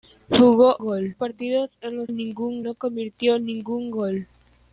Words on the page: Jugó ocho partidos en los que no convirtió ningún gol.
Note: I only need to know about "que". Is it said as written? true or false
false